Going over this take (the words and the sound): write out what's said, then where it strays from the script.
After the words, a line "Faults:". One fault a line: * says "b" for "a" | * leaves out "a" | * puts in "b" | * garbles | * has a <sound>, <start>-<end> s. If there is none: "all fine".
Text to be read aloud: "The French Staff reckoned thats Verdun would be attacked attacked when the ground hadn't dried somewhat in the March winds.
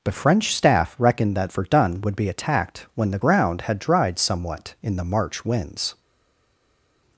"The French Staff reckoned that Verdun would be attacked when the ground had dried somewhat in the March winds.
Faults:
* says "that" for "thats"
* leaves out "attacked"
* says "had" for "hadn't"